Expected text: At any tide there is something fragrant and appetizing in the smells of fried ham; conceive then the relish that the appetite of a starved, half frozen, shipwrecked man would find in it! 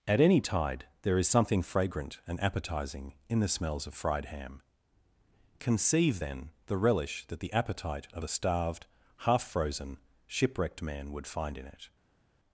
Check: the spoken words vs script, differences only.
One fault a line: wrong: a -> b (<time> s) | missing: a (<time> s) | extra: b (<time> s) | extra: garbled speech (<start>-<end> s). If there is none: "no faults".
no faults